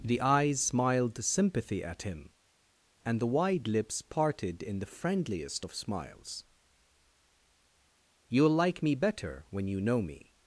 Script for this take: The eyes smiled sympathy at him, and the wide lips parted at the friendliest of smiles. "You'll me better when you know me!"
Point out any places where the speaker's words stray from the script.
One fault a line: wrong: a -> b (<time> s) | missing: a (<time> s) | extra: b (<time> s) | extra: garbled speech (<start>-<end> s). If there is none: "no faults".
wrong: at -> in (4.6 s)
extra: like (8.5 s)